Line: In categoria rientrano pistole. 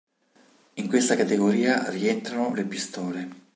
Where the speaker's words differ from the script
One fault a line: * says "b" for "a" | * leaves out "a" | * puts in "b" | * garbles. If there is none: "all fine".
* puts in "questa"
* puts in "le"